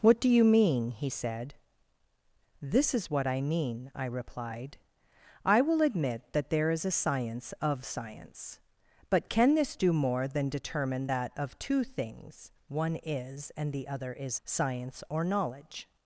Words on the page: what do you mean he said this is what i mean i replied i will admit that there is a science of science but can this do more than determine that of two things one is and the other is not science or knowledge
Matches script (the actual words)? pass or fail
fail